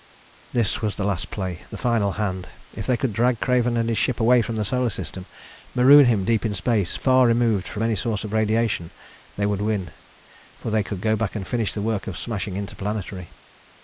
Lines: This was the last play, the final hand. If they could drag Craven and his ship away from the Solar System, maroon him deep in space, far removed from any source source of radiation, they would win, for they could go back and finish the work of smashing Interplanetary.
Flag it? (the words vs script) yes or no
yes